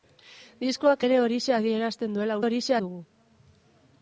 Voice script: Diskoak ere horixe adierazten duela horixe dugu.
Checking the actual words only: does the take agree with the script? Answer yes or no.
yes